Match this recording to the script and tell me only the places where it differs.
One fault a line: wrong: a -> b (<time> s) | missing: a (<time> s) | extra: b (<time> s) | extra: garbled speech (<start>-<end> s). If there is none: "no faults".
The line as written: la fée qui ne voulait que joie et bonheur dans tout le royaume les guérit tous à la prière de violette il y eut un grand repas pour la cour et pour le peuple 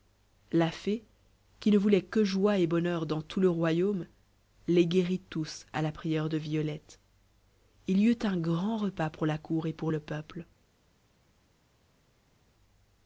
no faults